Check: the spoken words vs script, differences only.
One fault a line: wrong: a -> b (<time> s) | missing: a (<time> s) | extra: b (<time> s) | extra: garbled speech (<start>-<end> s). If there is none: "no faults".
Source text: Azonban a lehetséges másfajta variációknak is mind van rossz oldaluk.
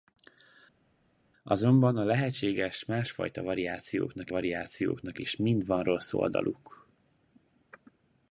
extra: variációknak (4.3 s)